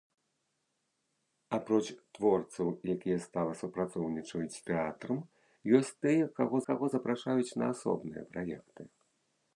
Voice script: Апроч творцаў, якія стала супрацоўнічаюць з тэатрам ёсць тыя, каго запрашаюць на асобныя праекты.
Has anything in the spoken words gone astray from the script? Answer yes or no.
yes